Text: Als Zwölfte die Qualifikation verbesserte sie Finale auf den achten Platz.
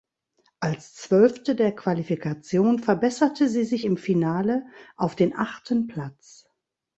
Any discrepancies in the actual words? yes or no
yes